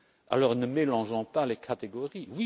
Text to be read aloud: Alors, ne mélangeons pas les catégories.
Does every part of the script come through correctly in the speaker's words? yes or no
yes